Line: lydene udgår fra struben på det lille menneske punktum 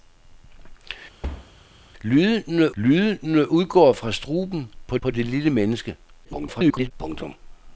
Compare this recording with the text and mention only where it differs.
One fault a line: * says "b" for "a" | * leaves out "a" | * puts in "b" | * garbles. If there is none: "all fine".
* puts in "lydene"
* puts in "på"
* garbles